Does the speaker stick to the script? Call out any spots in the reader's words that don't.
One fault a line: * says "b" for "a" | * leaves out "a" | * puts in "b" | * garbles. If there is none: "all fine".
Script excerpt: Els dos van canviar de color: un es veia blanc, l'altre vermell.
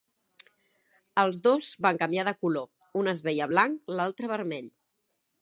all fine